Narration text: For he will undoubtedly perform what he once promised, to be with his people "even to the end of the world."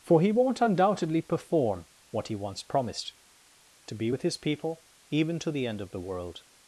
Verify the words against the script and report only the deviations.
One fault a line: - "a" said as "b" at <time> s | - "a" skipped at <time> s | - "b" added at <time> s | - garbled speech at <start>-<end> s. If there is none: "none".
- "will" said as "won't" at 0.3 s